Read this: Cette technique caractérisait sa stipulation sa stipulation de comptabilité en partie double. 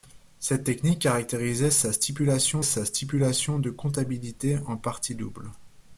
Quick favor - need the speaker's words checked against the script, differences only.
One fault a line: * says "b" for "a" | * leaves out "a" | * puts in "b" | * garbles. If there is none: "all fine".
all fine